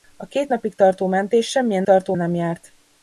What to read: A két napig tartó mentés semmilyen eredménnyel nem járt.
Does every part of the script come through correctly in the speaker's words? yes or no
no